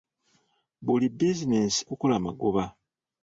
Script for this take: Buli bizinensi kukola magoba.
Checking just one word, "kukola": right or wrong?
right